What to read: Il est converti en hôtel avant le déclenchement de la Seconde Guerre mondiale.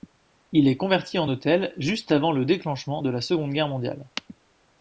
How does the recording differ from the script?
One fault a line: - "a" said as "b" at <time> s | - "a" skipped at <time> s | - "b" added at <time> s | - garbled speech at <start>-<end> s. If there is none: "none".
- "juste" added at 1.8 s